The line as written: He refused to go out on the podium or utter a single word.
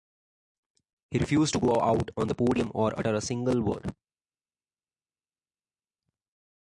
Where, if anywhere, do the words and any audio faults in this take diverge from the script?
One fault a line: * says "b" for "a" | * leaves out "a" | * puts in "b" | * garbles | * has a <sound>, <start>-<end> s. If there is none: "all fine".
all fine